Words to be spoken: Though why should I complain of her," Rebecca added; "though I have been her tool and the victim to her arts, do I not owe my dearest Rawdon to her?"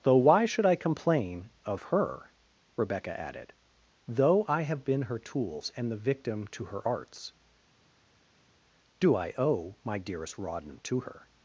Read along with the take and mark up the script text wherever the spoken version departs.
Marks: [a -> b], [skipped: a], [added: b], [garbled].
Though why should I complain of her," Rebecca added; "though I have been her [tool -> tools] and the victim to her arts, do I [skipped: not] owe my dearest Rawdon to her?"